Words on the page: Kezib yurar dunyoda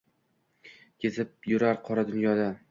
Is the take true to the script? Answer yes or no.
no